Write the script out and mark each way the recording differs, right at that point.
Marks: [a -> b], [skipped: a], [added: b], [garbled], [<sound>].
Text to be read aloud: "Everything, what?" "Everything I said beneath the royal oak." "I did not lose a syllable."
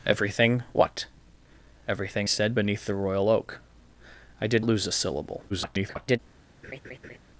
"Everything, what?" "Everything [skipped: I] said beneath the royal oak." "I did [skipped: not] lose a syllable." [garbled] [laugh]